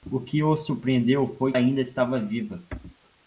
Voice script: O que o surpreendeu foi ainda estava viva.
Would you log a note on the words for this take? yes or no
no